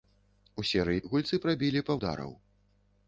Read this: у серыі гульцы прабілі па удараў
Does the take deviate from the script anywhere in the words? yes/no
no